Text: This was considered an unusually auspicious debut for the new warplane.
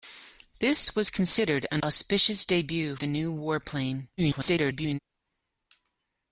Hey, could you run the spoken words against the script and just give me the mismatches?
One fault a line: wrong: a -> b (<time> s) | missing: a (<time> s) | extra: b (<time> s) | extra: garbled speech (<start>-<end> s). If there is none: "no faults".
missing: unusually (1.8 s)
missing: for (3.0 s)
extra: garbled speech (4.2-5.0 s)